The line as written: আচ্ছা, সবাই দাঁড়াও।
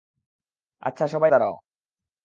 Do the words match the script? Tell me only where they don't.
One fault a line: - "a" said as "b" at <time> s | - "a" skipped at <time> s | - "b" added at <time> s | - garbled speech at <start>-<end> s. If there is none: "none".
none